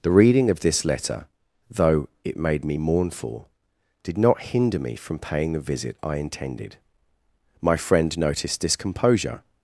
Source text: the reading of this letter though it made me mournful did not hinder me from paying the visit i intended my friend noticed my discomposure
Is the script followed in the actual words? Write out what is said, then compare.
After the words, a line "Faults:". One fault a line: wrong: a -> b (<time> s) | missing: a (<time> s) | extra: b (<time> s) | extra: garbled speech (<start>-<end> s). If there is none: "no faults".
the reading of this letter though it made me mournful did not hinder me from paying the visit i intended my friend noticed discomposure
Faults:
missing: my (8.6 s)